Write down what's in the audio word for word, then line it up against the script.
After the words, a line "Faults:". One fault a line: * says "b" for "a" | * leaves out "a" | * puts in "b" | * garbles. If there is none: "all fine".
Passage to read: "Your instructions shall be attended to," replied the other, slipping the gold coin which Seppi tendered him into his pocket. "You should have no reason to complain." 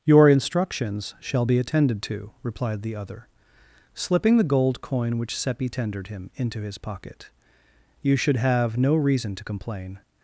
"Your instructions shall be attended to," replied the other, slipping the gold coin which Seppi tendered him into his pocket. "You should have no reason to complain."
Faults:
all fine